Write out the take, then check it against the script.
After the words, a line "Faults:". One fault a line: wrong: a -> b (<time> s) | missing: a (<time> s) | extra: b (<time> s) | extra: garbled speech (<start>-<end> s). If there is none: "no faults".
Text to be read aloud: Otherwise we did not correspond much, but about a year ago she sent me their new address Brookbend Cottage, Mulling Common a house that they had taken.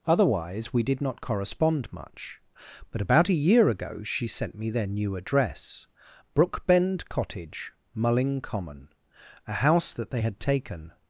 Otherwise we did not correspond much, but about a year ago she sent me their new address Brookbend Cottage, Mulling Common a house that they had taken.
Faults:
no faults